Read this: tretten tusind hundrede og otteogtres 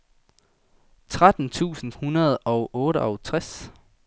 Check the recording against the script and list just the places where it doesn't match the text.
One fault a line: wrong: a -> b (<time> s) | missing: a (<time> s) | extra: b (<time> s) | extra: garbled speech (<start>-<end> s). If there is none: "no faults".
no faults